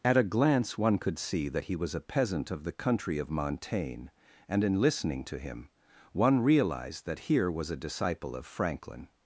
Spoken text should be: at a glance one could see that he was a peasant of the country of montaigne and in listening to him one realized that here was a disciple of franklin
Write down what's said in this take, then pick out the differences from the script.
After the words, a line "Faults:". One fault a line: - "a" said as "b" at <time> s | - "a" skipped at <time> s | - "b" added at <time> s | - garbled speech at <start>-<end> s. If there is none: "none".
at a glance one could see that he was a peasant of the country of montaigne and in listening to him one realized that here was a disciple of franklin
Faults:
none